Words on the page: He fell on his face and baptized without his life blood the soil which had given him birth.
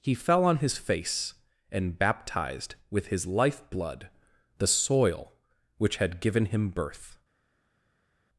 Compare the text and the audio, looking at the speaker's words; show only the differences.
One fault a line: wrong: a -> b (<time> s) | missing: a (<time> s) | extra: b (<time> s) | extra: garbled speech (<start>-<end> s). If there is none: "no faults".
wrong: without -> with (2.9 s)